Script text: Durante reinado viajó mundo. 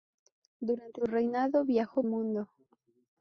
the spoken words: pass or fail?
pass